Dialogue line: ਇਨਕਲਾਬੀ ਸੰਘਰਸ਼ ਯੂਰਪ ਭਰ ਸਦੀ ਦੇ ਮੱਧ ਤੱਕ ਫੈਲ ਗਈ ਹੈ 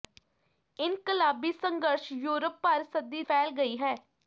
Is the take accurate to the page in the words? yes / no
no